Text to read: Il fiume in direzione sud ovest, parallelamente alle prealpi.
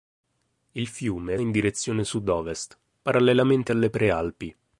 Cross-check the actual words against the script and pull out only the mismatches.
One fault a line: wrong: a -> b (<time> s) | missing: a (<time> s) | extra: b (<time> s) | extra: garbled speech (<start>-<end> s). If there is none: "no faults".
no faults